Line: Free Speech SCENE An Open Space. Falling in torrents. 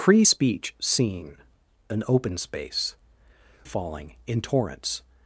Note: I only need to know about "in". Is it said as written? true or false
true